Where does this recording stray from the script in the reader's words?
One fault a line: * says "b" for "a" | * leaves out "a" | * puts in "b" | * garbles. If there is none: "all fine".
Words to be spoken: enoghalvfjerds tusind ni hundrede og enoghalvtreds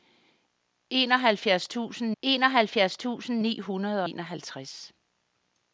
* puts in "enoghalvfjerds tusind"
* leaves out "og"